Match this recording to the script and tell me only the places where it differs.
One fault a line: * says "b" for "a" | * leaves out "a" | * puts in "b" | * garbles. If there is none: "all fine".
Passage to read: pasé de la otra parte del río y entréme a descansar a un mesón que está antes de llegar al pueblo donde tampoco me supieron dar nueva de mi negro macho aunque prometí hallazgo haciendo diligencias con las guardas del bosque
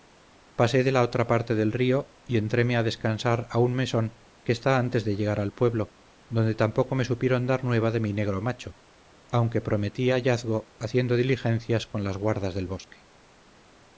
all fine